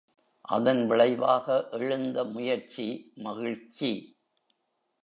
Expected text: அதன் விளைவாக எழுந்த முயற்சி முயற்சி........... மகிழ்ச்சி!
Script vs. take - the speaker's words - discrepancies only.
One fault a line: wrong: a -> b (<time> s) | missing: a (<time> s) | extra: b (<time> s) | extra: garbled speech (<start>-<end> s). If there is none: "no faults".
missing: முயற்சி (2.9 s)